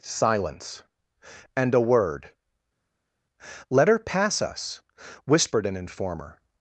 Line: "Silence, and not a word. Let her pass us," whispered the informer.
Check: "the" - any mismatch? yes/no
yes